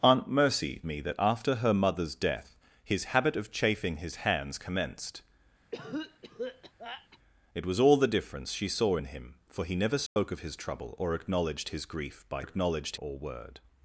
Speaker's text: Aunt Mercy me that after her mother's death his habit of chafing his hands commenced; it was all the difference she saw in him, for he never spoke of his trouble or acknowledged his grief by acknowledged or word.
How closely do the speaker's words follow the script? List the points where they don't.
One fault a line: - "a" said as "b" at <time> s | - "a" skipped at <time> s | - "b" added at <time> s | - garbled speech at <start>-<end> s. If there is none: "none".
none